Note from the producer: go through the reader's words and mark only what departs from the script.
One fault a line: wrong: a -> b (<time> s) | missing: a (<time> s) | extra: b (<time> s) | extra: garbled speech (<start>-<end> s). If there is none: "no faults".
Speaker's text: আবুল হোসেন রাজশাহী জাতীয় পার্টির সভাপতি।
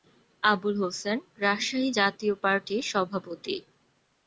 no faults